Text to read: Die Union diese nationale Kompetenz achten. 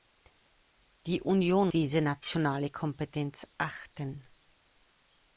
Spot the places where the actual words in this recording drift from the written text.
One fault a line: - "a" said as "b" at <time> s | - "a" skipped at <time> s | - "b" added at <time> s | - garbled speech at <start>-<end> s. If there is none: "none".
none